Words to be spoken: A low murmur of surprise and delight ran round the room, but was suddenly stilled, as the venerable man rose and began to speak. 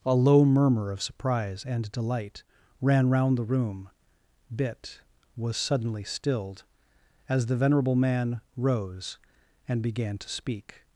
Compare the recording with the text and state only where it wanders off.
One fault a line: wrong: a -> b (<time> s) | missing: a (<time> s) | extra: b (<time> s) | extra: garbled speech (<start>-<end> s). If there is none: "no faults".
wrong: but -> bit (4.5 s)